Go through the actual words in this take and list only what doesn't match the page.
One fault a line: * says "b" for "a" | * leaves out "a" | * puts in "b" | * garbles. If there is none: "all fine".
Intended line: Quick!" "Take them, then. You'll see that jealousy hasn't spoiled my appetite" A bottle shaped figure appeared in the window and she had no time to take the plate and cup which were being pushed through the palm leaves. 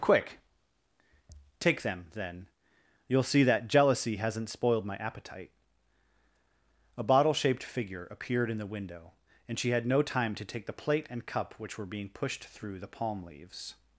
all fine